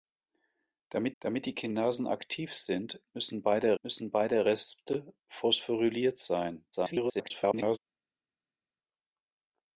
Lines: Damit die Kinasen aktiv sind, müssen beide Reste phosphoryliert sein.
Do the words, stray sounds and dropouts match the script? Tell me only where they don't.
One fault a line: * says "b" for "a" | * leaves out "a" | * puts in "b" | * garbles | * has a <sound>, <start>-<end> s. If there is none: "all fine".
* puts in "damit"
* puts in "müssen beide"
* garbles